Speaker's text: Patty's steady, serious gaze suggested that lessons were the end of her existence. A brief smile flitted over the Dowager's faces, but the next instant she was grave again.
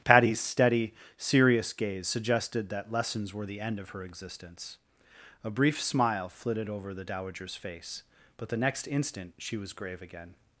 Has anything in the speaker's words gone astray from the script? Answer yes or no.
yes